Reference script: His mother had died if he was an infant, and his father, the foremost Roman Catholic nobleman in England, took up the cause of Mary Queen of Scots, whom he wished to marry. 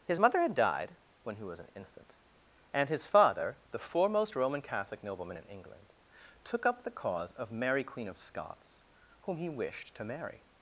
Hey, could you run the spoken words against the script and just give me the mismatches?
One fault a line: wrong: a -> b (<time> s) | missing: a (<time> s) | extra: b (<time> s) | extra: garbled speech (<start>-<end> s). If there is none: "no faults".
wrong: if -> when (1.2 s)